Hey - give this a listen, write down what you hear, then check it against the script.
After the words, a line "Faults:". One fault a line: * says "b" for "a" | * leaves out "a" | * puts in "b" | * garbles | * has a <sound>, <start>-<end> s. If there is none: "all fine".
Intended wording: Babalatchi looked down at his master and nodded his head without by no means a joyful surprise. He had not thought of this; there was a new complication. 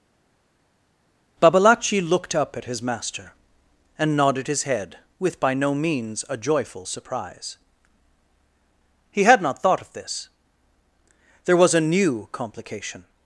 Babalatchi looked up at his master and nodded his head with by no means a joyful surprise. He had not thought of this; there was a new complication.
Faults:
* says "up" for "down"
* says "with" for "without"